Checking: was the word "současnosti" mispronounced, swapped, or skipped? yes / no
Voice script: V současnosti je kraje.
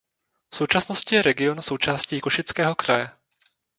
no